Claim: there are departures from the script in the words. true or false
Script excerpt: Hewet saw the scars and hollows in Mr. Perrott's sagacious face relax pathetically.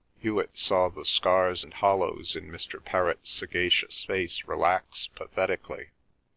false